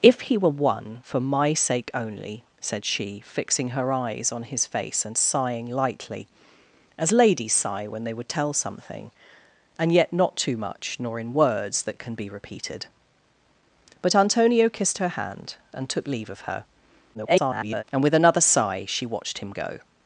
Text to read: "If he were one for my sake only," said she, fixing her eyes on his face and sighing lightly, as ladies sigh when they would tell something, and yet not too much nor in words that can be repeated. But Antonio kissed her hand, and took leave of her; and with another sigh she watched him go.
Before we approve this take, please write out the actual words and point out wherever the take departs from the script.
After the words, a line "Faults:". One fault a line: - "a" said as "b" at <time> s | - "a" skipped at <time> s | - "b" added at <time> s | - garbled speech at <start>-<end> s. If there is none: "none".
"If he were one for my sake only," said she, fixing her eyes on his face and sighing lightly, as ladies sigh when they would tell something, and yet not too much nor in words that can be repeated. But Antonio kissed her hand, and took leave of her; [garbled] and with another sigh she watched him go.
Faults:
- garbled speech at 17.1-17.8 s